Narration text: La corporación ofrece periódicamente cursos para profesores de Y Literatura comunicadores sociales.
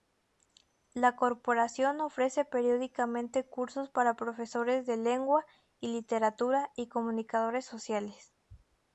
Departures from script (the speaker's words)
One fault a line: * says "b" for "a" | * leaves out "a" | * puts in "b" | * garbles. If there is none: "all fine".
* puts in "Lengua"
* puts in "y"